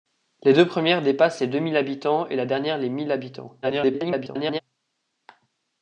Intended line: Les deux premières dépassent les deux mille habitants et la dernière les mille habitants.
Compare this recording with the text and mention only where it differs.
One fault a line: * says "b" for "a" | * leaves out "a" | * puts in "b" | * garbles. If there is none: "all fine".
* garbles